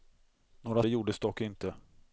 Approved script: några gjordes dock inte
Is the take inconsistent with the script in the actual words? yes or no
no